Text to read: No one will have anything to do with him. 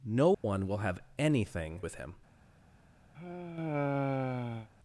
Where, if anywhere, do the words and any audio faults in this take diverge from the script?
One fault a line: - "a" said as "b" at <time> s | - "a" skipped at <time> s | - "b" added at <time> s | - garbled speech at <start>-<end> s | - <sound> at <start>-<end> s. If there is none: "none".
- dropout at 0.3-0.4 s
- "to do" skipped at 1.8 s
- sigh at 3.1-4.7 s